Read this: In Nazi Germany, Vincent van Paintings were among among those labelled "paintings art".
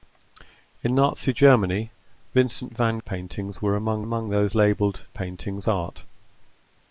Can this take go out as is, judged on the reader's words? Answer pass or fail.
pass